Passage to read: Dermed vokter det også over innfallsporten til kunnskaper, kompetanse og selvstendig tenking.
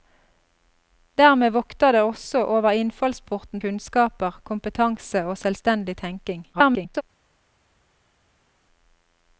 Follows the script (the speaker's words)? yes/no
no